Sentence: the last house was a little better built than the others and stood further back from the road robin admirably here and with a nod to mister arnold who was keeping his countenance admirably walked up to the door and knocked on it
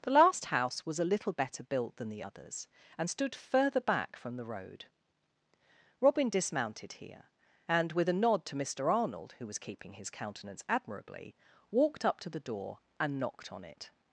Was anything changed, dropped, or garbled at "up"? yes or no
no